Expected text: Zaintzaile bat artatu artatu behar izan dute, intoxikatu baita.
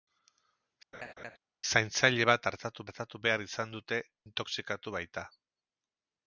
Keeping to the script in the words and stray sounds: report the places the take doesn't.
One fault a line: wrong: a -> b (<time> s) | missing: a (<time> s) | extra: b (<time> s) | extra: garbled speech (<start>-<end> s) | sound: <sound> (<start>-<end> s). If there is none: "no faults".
sound: laugh (0.9-1.4 s)